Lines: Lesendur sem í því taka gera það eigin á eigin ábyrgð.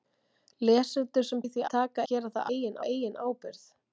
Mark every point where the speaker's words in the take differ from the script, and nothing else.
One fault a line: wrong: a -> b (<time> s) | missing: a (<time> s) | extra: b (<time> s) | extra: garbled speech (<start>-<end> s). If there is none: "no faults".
no faults